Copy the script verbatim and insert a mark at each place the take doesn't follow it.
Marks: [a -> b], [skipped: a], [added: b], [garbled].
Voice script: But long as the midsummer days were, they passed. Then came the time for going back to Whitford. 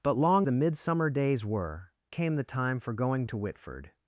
But long [skipped: as] the midsummer days were, [skipped: they passed. Then] came the time for going [skipped: back] to Whitford.